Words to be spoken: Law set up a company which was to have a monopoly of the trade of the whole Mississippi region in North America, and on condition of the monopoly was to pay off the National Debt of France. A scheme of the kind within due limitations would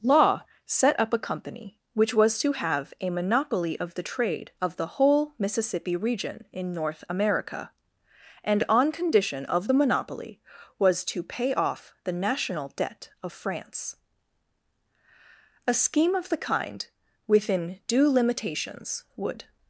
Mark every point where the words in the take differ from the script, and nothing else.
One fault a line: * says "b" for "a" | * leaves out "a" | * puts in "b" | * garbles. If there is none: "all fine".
all fine